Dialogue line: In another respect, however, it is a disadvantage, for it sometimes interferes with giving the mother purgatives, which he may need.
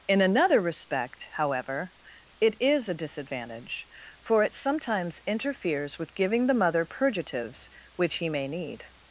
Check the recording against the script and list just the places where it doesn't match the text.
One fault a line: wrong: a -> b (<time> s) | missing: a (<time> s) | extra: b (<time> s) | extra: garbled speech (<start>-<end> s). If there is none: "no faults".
no faults